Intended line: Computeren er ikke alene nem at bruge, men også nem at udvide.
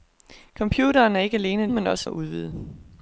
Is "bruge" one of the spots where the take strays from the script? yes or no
yes